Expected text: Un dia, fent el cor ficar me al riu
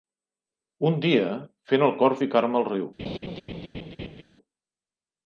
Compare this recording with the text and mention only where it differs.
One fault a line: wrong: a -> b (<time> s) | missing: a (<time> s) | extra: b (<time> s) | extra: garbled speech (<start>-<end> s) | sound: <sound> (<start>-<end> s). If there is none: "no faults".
sound: laugh (3.0-4.2 s)